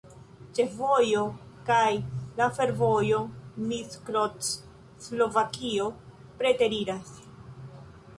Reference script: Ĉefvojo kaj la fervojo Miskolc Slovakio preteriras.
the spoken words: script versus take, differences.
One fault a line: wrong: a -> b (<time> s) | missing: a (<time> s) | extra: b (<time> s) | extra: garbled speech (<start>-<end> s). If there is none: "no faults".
no faults